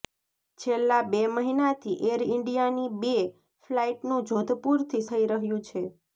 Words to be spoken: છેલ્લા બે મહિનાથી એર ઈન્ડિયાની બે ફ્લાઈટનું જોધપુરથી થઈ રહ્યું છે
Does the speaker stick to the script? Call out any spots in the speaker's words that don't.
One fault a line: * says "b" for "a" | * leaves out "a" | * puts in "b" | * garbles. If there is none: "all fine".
all fine